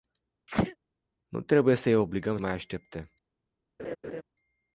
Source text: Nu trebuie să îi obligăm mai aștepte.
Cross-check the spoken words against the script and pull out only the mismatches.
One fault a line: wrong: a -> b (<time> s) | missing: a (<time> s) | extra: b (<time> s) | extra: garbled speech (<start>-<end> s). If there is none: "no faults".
no faults